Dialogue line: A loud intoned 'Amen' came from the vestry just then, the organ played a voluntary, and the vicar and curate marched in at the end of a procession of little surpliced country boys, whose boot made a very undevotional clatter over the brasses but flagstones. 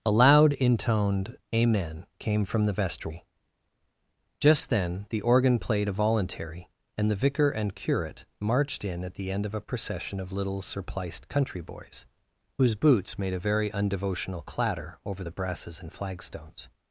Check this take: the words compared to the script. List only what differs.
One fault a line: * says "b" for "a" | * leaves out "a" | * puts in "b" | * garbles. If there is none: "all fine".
* says "boots" for "boot"
* says "and" for "but"